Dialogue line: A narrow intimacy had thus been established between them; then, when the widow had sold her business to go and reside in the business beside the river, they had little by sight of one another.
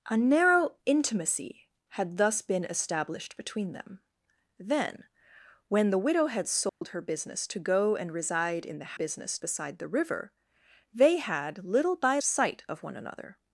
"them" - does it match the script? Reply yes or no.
yes